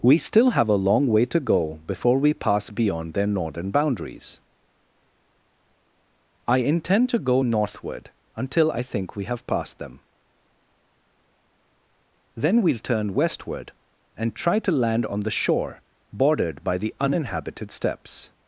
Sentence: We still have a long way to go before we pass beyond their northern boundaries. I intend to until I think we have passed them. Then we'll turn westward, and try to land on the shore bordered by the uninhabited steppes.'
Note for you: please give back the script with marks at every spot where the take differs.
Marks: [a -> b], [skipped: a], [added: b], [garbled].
We still have a long way to go before we pass beyond their northern boundaries. I intend to [added: go northward] until I think we have passed them. Then we'll turn westward, and try to land on the shore bordered by the uninhabited steppes.'